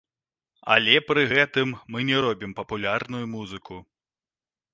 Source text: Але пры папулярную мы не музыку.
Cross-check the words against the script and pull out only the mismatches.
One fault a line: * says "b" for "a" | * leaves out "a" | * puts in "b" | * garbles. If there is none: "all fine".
* says "гэтым" for "папулярную"
* puts in "робім папулярную"